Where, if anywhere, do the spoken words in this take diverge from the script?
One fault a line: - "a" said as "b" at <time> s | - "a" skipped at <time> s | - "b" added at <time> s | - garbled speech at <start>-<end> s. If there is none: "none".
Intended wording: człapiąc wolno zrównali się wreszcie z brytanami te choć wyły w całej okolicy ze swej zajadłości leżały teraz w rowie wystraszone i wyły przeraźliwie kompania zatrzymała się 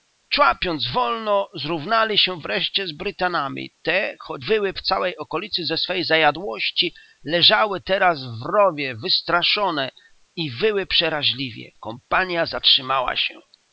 none